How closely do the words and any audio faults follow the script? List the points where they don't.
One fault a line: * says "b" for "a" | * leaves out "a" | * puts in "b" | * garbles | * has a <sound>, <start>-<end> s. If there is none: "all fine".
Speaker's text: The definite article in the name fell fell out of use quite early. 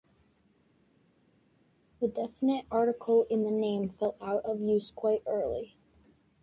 * leaves out "fell"